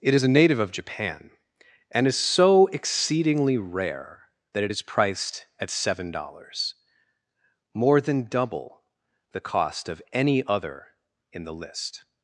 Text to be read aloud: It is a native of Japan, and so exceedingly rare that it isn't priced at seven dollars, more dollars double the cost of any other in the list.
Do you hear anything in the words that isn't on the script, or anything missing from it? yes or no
yes